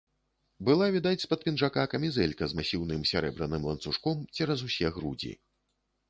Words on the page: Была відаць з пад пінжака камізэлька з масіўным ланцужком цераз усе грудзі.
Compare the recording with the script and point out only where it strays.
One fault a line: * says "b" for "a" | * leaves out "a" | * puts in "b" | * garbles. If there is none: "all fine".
* puts in "сярэбраным"